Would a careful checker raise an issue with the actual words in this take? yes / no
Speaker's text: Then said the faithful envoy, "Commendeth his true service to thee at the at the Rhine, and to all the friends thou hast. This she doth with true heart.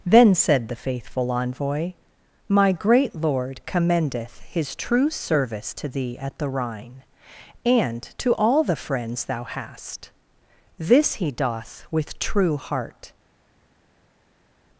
yes